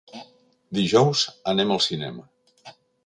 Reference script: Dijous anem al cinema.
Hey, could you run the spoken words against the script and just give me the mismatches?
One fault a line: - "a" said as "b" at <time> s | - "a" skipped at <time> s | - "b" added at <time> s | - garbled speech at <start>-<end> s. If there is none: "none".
none